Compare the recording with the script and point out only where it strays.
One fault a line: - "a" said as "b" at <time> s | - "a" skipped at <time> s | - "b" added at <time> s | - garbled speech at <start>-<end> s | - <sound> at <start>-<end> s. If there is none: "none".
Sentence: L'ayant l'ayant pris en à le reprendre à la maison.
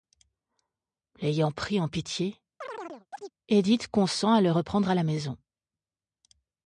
- "l'ayant" skipped at 1.5 s
- "pitié Édith consent" added at 1.9 s
- chirp at 2.6-3.3 s